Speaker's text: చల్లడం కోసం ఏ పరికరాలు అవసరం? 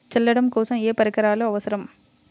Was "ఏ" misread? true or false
false